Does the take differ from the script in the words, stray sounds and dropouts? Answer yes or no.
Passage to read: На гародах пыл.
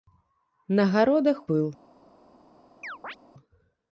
yes